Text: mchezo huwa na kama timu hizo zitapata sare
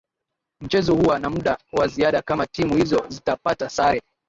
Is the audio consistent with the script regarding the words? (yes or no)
no